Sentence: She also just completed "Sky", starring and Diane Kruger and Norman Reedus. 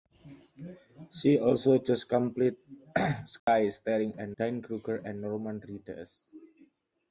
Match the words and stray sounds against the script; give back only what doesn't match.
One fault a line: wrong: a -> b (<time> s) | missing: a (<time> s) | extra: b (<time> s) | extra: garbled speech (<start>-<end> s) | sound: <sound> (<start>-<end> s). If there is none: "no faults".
sound: dropout (3.4-3.5 s)